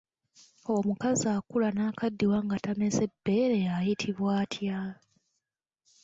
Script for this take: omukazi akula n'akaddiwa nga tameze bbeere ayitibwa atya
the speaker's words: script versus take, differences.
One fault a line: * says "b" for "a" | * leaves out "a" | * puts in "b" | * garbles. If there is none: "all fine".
all fine